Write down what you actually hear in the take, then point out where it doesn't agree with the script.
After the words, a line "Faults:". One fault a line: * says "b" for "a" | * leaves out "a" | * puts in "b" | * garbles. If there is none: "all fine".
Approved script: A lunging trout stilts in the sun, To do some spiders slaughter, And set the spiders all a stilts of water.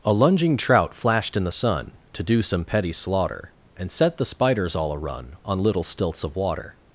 A lunging trout flashed in the sun, To do some petty slaughter, And set the spiders all a run On little stilts of water.
Faults:
* says "flashed" for "stilts"
* says "petty" for "spiders"
* puts in "run On little"